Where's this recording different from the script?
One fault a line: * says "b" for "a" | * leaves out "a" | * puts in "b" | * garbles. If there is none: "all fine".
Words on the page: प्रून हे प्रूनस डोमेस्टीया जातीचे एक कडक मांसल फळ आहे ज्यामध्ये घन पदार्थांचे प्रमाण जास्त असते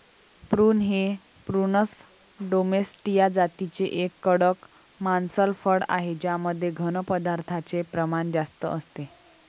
all fine